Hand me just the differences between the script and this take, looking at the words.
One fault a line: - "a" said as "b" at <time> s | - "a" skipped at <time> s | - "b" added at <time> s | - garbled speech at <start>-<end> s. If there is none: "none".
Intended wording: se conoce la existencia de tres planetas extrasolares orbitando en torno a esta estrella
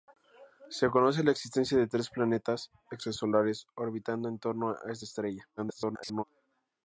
- garbled speech at 5.6-6.2 s